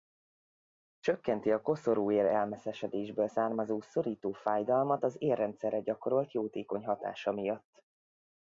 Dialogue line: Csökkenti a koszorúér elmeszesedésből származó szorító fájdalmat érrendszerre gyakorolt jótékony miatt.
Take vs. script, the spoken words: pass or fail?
fail